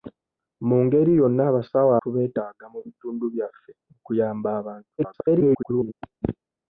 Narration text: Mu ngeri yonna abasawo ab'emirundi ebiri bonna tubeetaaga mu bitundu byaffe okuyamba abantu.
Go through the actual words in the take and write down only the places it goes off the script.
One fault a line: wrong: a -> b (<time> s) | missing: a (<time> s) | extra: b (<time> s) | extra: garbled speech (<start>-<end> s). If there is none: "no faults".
missing: ab'emirundi ebiri bonna (1.9 s)
extra: garbled speech (5.0-5.9 s)